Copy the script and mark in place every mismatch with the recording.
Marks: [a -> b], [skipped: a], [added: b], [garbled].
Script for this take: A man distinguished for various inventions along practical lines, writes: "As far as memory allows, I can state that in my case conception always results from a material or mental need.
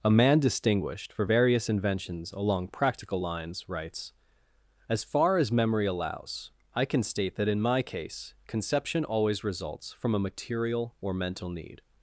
A man distinguished for various inventions along practical lines, writes: "As far as memory allows, I can state that in my case conception always results from a material or mental need.